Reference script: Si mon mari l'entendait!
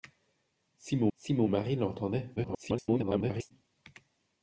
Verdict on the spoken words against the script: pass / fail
fail